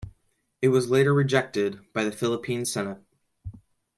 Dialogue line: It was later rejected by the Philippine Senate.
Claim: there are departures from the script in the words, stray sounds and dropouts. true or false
false